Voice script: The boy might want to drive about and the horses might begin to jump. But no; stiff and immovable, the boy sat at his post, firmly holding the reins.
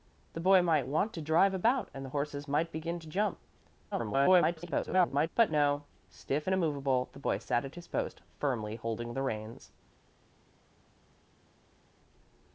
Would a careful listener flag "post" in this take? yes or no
no